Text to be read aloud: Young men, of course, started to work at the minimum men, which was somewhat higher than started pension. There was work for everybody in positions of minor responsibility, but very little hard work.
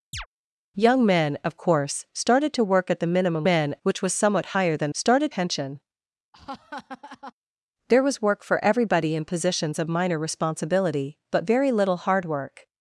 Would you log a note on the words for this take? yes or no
no